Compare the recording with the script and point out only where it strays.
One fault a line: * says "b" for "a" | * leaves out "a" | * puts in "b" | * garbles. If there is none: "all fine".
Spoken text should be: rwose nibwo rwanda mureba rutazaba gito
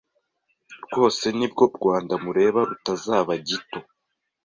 all fine